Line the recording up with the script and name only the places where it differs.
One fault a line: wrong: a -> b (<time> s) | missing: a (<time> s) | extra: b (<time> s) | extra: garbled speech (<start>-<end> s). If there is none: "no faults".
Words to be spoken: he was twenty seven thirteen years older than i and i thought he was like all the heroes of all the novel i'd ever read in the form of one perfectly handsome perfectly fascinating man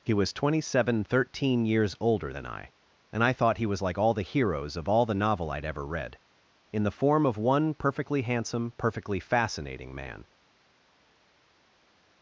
no faults